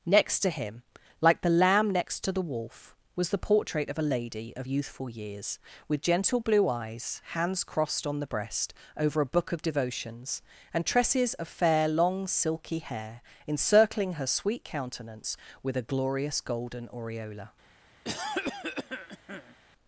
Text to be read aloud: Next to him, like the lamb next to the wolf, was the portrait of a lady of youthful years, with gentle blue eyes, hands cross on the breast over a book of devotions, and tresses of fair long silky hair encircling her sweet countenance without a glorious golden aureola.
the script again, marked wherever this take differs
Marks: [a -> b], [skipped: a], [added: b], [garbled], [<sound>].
Next to him, like the lamb next to the wolf, was the portrait of a lady of youthful years, with gentle blue eyes, hands [cross -> crossed] on the breast over a book of devotions, and tresses of fair long silky hair encircling her sweet countenance [without -> with] a glorious golden aureola. [cough]